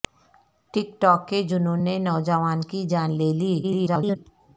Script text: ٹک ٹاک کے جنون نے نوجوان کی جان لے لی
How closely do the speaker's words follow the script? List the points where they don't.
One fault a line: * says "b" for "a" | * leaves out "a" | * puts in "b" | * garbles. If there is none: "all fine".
* garbles